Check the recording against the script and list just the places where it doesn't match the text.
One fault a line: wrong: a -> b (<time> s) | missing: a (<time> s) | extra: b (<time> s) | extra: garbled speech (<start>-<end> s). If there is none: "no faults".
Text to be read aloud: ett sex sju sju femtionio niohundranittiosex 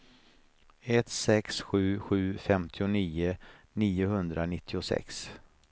no faults